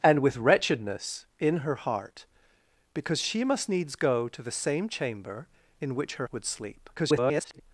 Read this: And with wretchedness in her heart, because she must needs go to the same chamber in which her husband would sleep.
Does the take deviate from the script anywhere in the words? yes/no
yes